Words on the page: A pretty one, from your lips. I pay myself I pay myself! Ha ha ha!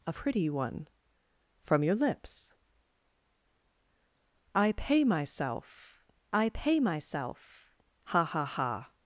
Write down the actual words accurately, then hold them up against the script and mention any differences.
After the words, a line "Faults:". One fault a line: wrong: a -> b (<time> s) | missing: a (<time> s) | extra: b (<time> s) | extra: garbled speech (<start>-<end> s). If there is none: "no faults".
A pretty one, from your lips. I pay myself I pay myself! Ha ha ha!
Faults:
no faults